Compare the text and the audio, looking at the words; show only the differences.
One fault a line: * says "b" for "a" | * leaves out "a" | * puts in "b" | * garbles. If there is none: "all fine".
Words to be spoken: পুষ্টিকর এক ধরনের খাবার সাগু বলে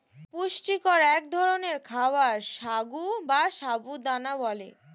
* puts in "বা সাবু দানা"